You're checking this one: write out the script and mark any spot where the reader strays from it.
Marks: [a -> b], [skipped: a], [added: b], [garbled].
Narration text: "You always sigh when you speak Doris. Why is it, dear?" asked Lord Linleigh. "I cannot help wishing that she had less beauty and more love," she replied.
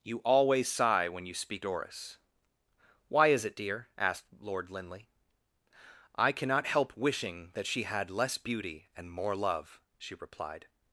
"You always sigh when you speak Doris. Why is it, dear?" asked Lord Linleigh. "I cannot help wishing that she had less beauty and more love," she replied.